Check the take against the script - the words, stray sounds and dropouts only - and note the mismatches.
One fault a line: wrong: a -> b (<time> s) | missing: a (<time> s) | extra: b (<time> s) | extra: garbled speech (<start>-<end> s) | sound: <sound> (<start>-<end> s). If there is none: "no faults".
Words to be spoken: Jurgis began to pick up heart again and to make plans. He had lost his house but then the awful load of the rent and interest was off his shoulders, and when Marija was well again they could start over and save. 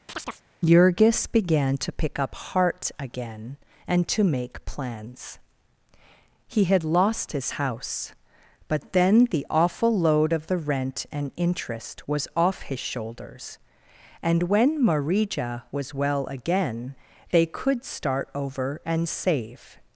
sound: chirp (0.1-0.4 s)